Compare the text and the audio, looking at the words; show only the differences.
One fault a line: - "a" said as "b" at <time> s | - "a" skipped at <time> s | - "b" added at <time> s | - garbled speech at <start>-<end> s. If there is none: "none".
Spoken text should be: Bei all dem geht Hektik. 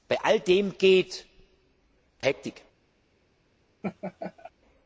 none